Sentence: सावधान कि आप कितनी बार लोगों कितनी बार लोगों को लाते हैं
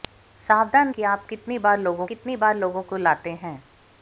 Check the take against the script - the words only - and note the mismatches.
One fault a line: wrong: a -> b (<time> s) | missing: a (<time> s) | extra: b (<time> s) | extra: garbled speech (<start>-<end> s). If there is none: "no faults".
no faults